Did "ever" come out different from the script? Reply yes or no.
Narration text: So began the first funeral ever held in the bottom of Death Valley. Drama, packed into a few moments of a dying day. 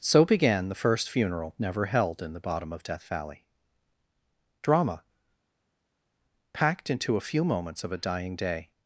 yes